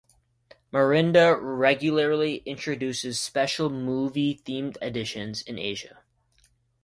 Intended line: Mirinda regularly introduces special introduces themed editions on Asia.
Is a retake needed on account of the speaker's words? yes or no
yes